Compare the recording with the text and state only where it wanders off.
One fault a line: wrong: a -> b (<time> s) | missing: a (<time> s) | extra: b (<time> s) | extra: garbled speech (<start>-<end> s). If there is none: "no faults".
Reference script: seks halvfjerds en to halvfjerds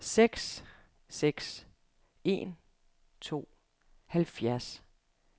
wrong: halvfjerds -> seks (1.1 s)